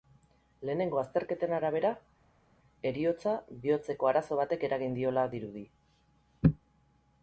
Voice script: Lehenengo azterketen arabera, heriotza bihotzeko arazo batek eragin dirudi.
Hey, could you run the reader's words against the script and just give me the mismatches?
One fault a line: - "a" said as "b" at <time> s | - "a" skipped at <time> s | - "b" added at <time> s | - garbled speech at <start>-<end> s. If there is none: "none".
- "diola" added at 5.0 s